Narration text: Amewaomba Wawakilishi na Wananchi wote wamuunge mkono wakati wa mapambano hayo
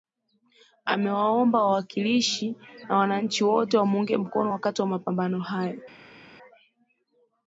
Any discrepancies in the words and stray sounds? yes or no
no